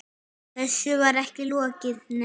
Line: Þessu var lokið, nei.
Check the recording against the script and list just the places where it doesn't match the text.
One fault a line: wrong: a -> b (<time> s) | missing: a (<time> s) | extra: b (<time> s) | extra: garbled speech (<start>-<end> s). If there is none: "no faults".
extra: ekki (1.2 s)